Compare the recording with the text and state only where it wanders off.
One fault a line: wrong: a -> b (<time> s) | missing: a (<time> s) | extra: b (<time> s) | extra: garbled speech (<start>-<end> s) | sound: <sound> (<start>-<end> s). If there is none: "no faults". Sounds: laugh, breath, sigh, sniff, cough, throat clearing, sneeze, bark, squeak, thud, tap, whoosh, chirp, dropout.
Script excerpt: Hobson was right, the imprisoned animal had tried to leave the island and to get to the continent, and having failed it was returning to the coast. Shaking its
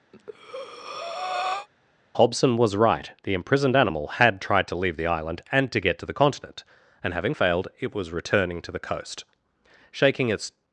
sound: breath (0.1-1.7 s)